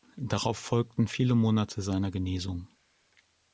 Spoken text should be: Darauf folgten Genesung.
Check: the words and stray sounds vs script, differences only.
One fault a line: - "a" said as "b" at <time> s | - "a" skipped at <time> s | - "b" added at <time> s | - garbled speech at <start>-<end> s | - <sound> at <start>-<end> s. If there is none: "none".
- "viele Monate seiner" added at 1.0 s